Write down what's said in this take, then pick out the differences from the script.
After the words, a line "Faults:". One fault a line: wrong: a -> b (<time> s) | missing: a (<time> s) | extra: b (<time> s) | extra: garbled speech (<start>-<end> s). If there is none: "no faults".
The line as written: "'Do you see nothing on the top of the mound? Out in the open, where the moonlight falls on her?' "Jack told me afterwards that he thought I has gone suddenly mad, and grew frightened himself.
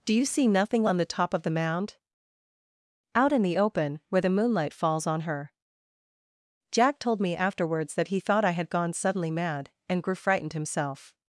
"'Do you see nothing on the top of the mound? Out in the open, where the moonlight falls on her?' "Jack told me afterwards that he thought I had gone suddenly mad, and grew frightened himself.
Faults:
wrong: has -> had (8.5 s)